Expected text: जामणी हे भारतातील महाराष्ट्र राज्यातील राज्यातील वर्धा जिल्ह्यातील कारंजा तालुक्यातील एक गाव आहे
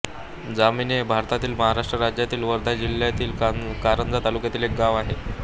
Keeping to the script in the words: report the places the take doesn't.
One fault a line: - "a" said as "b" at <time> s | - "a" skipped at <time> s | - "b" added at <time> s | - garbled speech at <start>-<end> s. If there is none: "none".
- "राज्यातील" skipped at 2.4 s